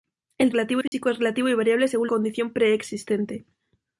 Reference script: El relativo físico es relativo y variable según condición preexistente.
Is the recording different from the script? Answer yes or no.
no